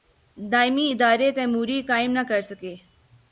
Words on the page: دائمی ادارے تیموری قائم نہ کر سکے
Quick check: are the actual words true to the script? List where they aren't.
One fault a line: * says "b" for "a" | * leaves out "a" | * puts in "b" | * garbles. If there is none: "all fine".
all fine